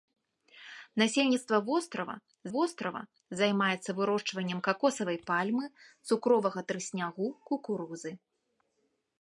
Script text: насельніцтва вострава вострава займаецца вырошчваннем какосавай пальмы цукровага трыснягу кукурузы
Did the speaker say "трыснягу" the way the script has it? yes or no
yes